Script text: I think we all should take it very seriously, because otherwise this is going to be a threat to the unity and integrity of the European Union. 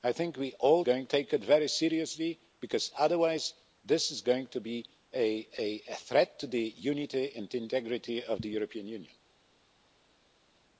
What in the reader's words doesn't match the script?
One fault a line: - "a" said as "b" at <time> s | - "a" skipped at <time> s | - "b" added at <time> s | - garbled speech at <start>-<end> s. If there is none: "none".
- "should" said as "going" at 0.8 s